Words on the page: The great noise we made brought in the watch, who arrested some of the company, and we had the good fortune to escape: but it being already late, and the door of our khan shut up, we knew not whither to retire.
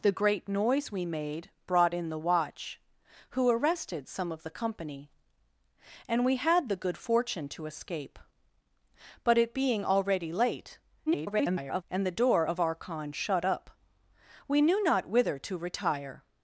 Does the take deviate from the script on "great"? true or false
false